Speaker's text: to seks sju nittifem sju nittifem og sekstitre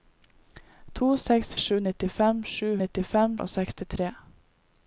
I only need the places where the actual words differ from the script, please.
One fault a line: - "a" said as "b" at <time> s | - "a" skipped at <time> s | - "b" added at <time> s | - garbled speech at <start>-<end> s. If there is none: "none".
none